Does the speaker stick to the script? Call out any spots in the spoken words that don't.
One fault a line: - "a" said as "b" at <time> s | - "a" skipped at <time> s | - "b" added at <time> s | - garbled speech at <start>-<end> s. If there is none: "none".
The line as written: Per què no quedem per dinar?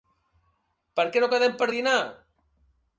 none